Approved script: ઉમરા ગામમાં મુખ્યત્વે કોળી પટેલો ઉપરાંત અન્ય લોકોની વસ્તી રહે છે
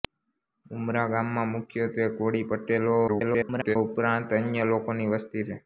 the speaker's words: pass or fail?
fail